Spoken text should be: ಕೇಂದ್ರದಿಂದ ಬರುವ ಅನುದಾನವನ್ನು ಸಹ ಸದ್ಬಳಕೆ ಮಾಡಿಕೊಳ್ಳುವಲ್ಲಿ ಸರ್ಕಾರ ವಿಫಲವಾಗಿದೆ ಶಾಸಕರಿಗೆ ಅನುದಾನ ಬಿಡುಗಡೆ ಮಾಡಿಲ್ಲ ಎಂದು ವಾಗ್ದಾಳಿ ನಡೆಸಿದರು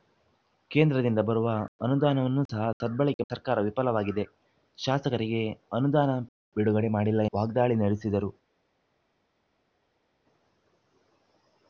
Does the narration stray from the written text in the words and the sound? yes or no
yes